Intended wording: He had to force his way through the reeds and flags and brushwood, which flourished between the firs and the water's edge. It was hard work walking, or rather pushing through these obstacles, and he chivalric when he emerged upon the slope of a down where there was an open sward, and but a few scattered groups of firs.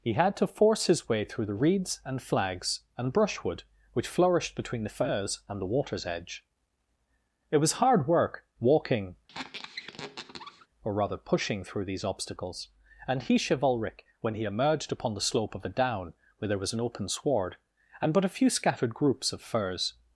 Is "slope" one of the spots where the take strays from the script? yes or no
no